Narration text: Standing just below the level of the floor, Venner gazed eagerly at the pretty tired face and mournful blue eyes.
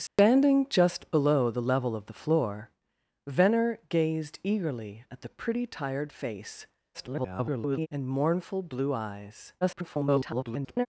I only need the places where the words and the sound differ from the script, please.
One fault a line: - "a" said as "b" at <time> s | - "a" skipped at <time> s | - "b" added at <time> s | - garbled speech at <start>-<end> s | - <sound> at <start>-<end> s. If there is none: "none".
- dropout at 0.1-0.2 s
- garbled speech at 6.9-7.9 s
- garbled speech at 9.6-10.9 s